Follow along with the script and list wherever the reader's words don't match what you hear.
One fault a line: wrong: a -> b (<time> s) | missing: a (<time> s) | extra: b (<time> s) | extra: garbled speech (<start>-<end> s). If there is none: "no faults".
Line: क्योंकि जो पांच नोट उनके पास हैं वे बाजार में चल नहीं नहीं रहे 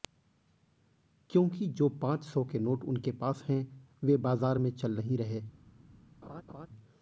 extra: सौ के (2.2 s)
missing: नहीं (5.2 s)